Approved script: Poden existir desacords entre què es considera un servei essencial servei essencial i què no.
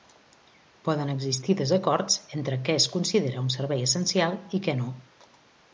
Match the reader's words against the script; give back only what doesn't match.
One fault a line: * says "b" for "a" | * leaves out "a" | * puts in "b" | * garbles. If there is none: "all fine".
* leaves out "servei essencial"